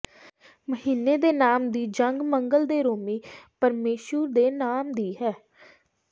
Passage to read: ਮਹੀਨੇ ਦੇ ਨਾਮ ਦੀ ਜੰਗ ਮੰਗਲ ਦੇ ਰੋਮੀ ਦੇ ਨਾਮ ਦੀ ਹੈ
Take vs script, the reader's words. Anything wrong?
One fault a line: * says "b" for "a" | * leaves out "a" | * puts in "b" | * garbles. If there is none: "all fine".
* puts in "ਪਰਮੇਸ਼ੁਰ"